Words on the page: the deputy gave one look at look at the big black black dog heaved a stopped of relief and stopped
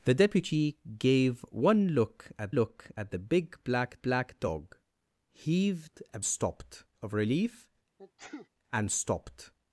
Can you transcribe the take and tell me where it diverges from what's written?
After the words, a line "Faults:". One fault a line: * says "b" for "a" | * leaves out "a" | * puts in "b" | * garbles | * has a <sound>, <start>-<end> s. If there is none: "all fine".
the deputy gave one look at look at the big black black dog heaved a stopped of relief and stopped
Faults:
* has a sneeze, 8.0-8.5 s